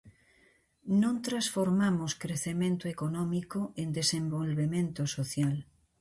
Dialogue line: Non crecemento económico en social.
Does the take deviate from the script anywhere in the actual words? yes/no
yes